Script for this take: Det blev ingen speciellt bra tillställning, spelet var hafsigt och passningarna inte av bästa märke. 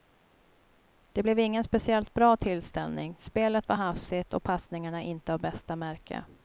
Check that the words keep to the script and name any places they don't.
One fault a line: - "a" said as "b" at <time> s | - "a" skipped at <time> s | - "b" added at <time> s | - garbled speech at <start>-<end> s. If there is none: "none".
none